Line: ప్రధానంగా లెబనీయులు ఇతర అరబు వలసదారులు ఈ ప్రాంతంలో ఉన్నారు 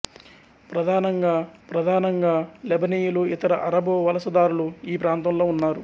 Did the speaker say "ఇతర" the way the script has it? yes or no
yes